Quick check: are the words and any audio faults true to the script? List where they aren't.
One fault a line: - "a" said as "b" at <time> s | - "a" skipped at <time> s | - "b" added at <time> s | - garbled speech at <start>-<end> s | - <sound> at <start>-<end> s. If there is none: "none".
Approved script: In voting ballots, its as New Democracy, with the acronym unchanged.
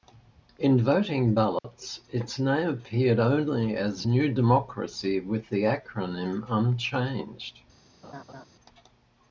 - dropout at 1.6-1.6 s
- "name appeared only" added at 2.4 s
- laugh at 8.0-8.5 s